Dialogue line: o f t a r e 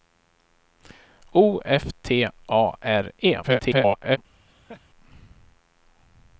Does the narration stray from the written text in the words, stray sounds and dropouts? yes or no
yes